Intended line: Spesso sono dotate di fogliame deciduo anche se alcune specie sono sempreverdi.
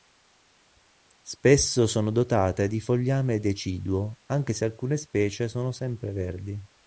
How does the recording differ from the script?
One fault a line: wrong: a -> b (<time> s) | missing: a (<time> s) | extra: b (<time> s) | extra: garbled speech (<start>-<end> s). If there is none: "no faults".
no faults